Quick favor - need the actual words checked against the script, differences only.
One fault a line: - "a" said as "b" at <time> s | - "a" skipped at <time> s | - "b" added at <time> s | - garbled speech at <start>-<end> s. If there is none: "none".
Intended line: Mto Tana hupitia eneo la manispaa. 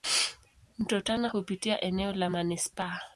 none